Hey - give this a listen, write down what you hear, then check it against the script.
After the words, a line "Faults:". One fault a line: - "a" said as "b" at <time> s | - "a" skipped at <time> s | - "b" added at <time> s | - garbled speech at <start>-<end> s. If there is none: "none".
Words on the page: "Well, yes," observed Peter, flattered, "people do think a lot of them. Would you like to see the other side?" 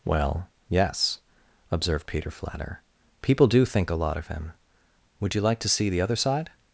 "Well, yes," observed Peter, flatter, "people do think a lot of him. Would you like to see the other side?"
Faults:
- "flattered" said as "flatter" at 2.3 s
- "them" said as "him" at 4.3 s